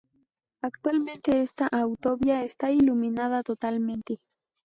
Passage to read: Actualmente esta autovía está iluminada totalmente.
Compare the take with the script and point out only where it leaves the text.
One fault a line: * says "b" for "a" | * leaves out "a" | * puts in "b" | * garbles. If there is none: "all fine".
all fine